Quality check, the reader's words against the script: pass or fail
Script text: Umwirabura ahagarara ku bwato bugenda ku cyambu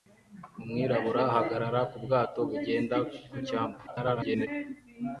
fail